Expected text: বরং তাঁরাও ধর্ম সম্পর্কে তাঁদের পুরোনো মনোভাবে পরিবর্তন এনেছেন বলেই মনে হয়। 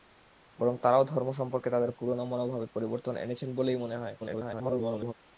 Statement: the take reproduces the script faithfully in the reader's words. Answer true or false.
false